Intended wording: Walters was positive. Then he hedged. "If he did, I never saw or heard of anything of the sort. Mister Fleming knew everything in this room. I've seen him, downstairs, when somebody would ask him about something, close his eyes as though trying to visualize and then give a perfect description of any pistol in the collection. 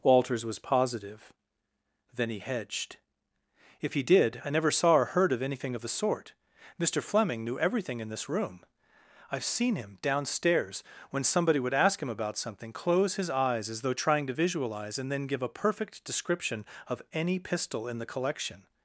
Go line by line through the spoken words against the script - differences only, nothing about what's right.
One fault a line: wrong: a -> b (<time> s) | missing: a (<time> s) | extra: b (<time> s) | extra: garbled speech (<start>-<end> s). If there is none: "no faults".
no faults